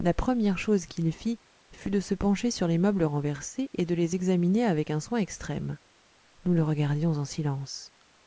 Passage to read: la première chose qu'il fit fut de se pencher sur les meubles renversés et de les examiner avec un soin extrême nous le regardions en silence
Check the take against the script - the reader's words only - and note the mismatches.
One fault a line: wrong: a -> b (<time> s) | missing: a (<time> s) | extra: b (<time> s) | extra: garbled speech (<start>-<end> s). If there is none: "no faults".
no faults